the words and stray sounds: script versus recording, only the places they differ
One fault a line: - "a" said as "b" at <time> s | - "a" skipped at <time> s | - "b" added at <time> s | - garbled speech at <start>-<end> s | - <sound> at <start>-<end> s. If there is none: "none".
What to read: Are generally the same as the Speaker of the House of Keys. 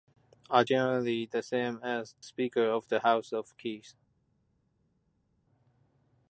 - "the" skipped at 2.1 s